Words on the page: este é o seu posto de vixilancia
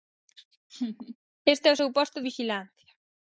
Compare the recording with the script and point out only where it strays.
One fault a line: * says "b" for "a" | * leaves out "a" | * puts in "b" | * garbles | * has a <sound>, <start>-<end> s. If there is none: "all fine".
* has a laugh, 0.7-1.2 s
* leaves out "de"